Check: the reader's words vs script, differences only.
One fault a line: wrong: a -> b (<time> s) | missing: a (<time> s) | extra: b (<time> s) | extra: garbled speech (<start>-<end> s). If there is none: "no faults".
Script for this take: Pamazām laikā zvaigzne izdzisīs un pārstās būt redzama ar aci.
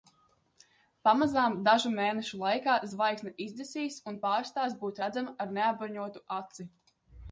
extra: dažu mēnešu (1.7 s)
extra: neapbruņotu (5.6 s)